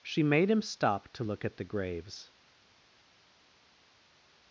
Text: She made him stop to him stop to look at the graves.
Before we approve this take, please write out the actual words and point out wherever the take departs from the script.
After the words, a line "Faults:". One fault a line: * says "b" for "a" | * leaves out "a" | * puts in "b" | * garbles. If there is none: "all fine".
She made him stop to look at the graves.
Faults:
* leaves out "him stop to"